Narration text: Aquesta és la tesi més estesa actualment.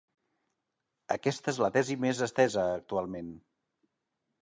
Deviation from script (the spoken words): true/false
false